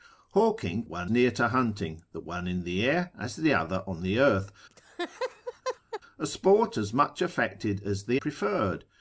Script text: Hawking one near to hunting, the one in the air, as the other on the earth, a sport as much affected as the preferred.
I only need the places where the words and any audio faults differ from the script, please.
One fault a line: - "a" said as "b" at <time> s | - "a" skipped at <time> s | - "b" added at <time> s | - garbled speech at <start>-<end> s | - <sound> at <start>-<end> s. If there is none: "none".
- laugh at 4.7-6.0 s